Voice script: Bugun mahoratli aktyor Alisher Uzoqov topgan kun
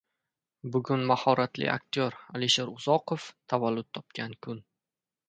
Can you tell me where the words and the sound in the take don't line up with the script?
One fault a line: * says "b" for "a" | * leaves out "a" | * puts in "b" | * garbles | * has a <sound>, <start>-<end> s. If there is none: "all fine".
* puts in "tavallud"